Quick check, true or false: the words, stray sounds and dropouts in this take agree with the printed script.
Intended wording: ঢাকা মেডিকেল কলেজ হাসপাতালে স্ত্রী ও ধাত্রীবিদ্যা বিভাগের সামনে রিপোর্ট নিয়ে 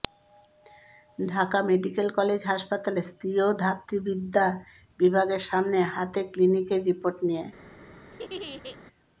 false